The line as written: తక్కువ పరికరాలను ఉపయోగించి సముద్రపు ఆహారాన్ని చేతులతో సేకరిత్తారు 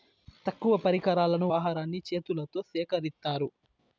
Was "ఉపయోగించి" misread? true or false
true